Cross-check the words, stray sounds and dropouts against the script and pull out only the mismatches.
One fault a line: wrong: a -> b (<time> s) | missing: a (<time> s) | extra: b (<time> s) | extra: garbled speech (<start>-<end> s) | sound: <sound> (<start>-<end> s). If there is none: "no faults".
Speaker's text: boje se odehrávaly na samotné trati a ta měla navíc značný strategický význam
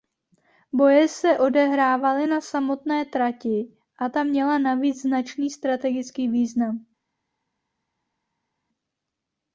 no faults